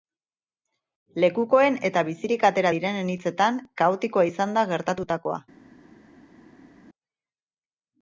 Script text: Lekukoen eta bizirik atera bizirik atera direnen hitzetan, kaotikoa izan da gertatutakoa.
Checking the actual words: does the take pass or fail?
fail